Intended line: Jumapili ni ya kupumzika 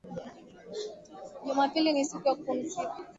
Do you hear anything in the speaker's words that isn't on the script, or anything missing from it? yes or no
yes